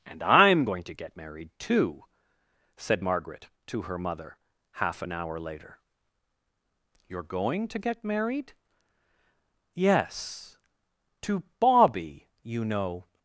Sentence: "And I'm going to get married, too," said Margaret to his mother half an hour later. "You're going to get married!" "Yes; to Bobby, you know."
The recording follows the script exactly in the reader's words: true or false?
false